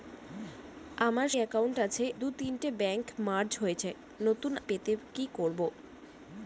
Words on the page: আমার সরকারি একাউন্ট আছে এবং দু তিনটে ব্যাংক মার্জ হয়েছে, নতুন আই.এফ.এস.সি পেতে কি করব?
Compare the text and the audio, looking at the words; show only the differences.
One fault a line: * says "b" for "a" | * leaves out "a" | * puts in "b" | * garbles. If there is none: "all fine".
* leaves out "সরকারি"
* leaves out "এবং"
* leaves out "আই.এফ.এস.সি"